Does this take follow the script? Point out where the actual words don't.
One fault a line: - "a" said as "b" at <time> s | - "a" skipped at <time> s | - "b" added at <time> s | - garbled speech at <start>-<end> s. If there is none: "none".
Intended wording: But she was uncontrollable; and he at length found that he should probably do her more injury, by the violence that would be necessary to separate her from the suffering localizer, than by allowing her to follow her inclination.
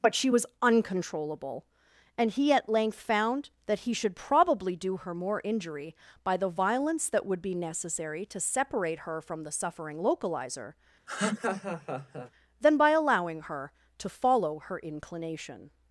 none